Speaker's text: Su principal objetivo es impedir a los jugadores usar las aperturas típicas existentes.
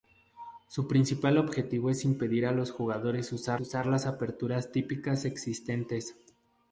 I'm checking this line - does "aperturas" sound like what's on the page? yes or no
yes